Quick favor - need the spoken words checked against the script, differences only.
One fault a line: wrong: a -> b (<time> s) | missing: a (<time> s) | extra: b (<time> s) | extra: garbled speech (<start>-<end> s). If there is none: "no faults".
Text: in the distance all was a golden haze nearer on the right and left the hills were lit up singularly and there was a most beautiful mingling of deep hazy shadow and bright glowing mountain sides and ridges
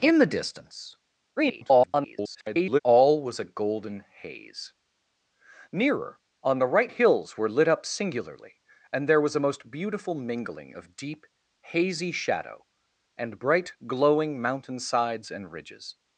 extra: garbled speech (1.4-2.8 s)
missing: and left the (6.9 s)